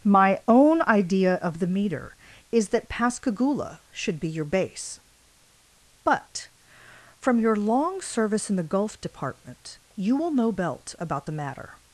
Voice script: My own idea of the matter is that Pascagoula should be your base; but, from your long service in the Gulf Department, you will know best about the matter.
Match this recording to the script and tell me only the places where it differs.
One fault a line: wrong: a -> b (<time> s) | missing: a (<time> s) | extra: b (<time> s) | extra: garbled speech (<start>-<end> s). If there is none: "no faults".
wrong: matter -> meter (1.7 s)
wrong: best -> belt (10.5 s)